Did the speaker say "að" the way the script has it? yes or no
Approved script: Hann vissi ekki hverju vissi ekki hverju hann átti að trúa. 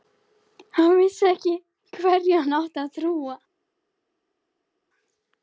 yes